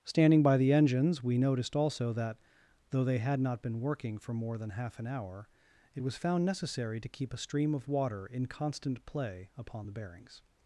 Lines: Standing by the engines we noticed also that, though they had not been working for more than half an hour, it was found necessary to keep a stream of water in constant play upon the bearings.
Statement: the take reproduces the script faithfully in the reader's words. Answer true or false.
true